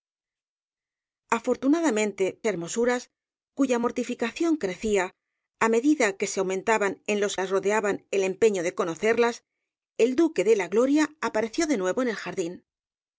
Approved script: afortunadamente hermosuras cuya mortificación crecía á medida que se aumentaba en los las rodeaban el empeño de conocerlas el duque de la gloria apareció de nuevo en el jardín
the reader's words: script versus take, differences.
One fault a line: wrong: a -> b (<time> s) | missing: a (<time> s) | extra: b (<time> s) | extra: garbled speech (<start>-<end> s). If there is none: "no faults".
no faults